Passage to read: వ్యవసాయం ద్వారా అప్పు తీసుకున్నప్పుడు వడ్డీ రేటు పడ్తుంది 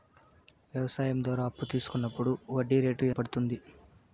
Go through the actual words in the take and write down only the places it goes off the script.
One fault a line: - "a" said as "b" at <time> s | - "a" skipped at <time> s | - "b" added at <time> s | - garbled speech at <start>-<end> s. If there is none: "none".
none